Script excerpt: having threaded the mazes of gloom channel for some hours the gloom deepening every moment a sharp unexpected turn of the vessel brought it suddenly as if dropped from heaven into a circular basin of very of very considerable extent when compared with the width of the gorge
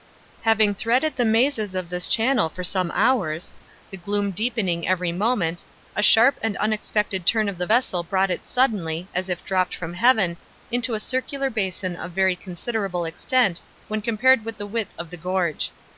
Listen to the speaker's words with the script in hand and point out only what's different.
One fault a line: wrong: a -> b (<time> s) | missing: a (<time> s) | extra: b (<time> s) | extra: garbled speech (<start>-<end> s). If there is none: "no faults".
wrong: gloom -> this (1.9 s)
extra: and (6.4 s)
missing: of very (12.4 s)